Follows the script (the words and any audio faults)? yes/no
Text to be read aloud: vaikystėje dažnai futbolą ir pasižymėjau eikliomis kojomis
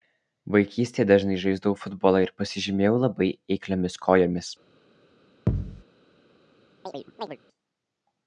no